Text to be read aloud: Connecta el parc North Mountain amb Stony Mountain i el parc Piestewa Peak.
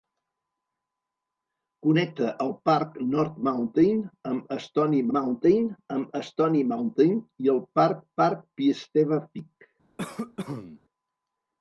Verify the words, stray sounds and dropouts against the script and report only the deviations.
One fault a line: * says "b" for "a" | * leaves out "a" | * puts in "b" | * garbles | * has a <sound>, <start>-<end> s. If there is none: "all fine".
* puts in "amb Stony Mountain"
* puts in "parc"
* has a cough, 10.0-10.8 s